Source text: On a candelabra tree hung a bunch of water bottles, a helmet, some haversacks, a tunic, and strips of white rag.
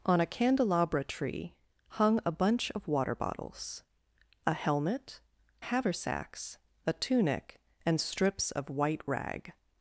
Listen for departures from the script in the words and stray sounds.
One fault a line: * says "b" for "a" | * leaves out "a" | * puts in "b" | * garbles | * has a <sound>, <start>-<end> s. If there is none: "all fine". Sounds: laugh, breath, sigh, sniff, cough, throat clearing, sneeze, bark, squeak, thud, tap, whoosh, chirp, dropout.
* leaves out "some"